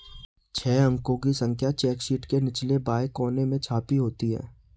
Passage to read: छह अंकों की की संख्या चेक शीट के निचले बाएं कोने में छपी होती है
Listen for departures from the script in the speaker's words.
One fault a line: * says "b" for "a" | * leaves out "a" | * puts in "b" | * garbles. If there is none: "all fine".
* leaves out "की"